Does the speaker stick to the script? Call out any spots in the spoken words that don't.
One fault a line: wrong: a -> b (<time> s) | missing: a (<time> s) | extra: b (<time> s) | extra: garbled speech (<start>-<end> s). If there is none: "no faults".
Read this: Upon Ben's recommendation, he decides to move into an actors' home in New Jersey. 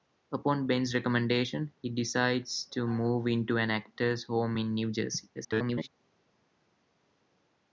extra: garbled speech (5.4-5.9 s)